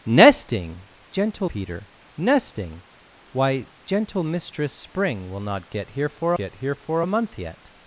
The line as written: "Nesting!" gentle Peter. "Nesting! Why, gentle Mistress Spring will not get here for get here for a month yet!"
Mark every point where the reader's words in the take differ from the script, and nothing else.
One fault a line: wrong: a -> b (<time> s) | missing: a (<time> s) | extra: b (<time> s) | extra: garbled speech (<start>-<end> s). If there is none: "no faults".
no faults